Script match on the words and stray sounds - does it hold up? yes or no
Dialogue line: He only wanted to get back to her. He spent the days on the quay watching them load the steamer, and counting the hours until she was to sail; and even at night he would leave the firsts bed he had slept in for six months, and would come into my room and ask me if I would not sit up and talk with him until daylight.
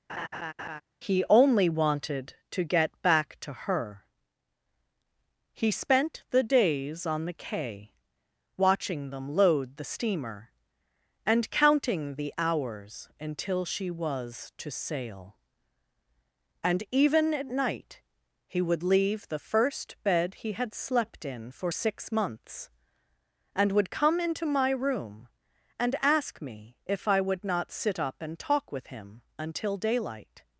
no